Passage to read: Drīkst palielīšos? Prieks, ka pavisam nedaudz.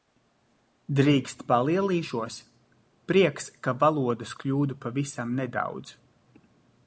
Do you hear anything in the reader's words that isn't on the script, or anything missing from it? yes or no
yes